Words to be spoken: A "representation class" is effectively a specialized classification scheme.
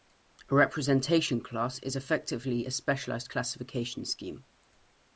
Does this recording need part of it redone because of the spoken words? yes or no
no